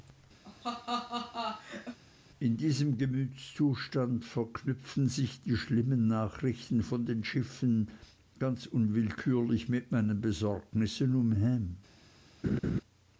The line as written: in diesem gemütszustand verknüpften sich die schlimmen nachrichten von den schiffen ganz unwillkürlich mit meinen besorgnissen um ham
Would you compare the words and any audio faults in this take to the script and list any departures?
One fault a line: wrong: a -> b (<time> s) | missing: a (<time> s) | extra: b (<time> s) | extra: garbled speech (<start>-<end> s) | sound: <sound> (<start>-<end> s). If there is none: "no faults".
sound: laugh (0.4-2.0 s)
sound: laugh (12.4-12.8 s)